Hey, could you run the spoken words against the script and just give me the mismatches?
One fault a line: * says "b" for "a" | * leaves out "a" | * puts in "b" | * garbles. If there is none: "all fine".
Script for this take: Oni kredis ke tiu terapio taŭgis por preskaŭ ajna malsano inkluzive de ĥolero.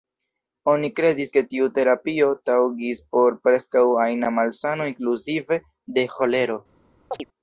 all fine